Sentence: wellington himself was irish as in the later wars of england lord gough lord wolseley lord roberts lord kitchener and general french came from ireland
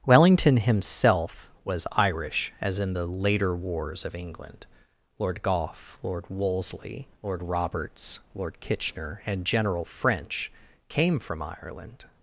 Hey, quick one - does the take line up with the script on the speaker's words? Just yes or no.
yes